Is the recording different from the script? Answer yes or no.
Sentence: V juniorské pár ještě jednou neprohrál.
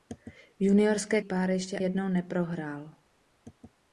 no